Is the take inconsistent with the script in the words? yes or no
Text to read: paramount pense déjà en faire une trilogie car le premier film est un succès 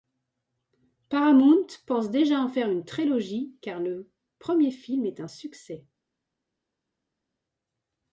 no